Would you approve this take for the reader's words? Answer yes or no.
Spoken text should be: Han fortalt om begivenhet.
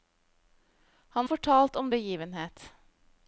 yes